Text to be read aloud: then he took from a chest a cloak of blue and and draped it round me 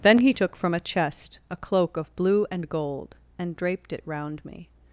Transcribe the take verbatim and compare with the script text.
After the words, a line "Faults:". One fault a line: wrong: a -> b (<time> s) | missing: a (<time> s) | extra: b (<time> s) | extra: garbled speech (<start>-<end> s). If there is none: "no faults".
then he took from a chest a cloak of blue and gold and draped it round me
Faults:
extra: gold (2.7 s)